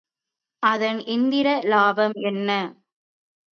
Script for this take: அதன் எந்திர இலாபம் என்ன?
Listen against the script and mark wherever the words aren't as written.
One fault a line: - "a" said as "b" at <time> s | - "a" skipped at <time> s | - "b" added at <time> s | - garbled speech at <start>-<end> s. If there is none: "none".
none